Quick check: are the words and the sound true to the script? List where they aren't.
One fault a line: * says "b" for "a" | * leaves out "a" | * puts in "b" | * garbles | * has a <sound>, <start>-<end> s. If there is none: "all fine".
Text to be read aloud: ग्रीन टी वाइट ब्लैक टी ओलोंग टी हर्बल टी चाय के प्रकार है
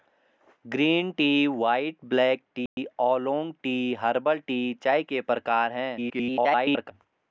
* has a dropout, 2.7-2.8 s
* garbles